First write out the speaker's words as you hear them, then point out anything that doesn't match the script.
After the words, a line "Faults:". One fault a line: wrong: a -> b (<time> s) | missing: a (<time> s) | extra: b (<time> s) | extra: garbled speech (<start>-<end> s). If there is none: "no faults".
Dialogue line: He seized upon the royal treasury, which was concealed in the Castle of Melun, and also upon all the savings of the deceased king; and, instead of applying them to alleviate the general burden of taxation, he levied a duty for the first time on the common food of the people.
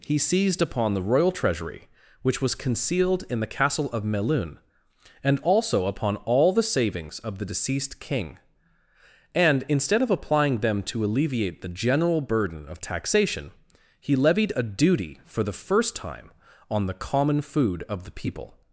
He seized upon the royal treasury, which was concealed in the Castle of Melun, and also upon all the savings of the deceased king; and, instead of applying them to alleviate the general burden of taxation, he levied a duty for the first time on the common food of the people.
Faults:
no faults